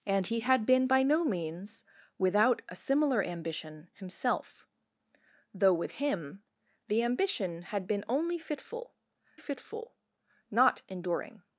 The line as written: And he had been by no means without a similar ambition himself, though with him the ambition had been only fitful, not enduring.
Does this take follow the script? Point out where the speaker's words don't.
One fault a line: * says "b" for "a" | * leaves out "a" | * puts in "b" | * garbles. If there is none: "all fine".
* puts in "fitful"